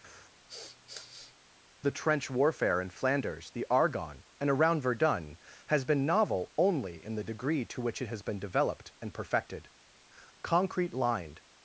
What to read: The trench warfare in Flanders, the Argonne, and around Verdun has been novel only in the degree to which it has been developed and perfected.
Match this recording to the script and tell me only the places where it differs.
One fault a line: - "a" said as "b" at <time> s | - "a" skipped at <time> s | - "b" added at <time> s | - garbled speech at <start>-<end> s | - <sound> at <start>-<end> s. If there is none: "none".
- sniff at 0.5-1.3 s
- "Concrete lined" added at 10.4 s